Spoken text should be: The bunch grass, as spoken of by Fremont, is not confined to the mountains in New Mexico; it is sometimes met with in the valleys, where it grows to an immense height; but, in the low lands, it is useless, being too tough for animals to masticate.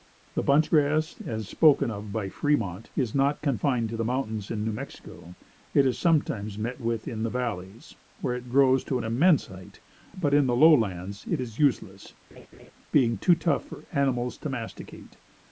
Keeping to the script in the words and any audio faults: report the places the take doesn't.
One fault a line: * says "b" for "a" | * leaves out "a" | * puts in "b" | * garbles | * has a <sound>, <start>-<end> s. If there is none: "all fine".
* has a laugh, 12.3-12.7 s